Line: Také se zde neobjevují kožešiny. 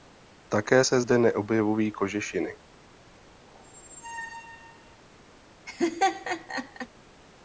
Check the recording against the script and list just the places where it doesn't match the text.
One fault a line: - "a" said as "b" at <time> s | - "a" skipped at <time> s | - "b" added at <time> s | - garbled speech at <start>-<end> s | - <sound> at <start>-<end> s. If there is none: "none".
- squeak at 3.4-5.0 s
- laugh at 5.7-6.9 s